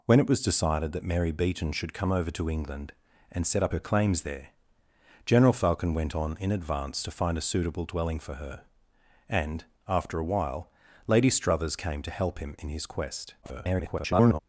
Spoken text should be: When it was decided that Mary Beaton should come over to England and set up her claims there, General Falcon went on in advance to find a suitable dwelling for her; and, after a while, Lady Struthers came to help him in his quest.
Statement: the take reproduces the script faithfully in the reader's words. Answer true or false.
false